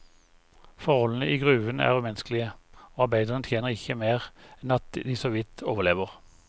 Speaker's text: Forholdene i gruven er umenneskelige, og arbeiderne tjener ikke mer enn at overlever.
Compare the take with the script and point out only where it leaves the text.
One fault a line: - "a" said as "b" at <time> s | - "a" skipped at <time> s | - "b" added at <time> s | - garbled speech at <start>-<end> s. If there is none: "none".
- "de såvidt" added at 5.0 s